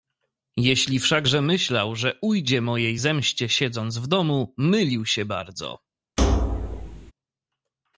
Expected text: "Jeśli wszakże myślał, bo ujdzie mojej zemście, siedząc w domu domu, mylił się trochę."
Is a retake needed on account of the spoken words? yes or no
yes